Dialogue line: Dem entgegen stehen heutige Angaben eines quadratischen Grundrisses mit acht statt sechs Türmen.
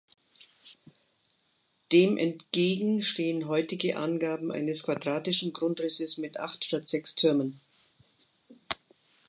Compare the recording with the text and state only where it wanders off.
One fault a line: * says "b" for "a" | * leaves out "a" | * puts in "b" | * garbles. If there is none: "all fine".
all fine